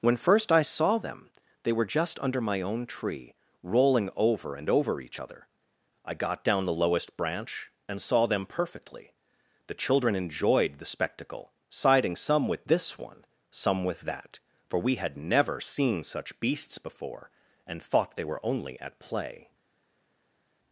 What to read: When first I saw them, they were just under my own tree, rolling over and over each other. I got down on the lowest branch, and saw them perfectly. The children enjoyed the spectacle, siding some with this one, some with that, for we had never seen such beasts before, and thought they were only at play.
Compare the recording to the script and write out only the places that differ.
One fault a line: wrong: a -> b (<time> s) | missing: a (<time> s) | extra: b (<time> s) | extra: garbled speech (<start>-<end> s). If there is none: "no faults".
missing: on (6.6 s)